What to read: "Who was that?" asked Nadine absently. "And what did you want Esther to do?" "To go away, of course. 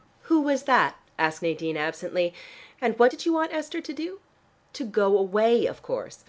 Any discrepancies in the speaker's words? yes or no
no